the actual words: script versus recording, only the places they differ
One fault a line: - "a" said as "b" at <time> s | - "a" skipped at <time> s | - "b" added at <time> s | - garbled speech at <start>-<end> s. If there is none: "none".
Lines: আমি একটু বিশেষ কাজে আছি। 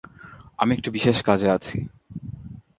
none